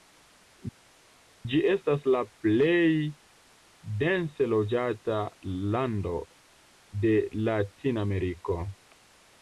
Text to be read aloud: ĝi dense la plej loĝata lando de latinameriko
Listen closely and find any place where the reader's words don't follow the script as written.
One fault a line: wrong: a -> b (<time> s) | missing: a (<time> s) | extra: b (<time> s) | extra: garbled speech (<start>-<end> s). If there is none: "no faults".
wrong: dense -> estas (1.7 s)
extra: dense (4.0 s)